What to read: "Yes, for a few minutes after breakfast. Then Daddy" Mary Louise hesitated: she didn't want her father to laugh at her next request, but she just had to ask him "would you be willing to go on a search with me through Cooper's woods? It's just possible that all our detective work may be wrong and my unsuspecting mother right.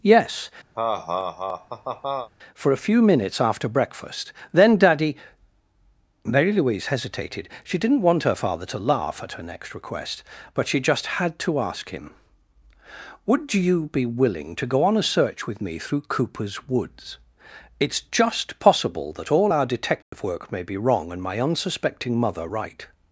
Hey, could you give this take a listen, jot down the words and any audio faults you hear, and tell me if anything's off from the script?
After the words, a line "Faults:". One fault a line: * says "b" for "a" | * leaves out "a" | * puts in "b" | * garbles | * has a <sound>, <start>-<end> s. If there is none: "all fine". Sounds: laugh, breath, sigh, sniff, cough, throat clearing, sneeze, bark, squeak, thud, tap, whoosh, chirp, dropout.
"Yes, for a few minutes after breakfast. Then Daddy" Mary Louise hesitated: she didn't want her father to laugh at her next request, but she just had to ask him "would you be willing to go on a search with me through Cooper's woods? It's just possible that all our detective work may be wrong and my unsuspecting mother right.
Faults:
* has a laugh, 0.7-2.3 s
* has a dropout, 20.0-20.1 s